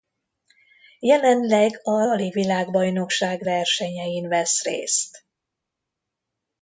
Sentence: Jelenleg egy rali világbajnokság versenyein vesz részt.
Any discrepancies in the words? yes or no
yes